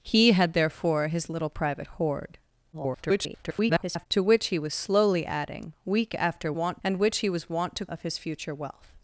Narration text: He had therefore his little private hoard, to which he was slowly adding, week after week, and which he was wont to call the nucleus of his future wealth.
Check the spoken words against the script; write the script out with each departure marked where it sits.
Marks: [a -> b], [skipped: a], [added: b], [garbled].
He had therefore his little private hoard, [garbled] to which he was slowly adding, week after [week, -> wont] and which he was wont to [skipped: call the nucleus] of his future wealth.